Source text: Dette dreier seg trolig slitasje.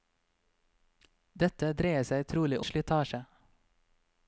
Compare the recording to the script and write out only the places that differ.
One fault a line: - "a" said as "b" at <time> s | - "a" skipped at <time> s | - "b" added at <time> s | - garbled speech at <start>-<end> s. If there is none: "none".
none